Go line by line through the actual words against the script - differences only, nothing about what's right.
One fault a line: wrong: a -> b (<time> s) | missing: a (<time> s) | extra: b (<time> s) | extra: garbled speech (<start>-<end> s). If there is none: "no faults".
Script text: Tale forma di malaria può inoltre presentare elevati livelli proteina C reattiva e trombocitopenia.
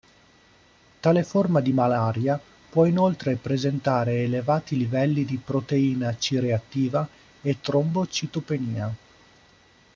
extra: di (5.2 s)